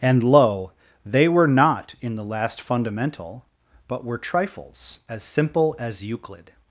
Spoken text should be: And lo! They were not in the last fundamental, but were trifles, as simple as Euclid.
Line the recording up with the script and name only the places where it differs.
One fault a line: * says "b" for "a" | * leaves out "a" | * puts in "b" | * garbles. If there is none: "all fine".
all fine